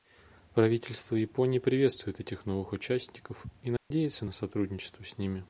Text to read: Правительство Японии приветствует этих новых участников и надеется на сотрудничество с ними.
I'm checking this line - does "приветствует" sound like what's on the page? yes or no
yes